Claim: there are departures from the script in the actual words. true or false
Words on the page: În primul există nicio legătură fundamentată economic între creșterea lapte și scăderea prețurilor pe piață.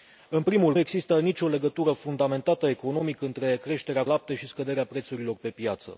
false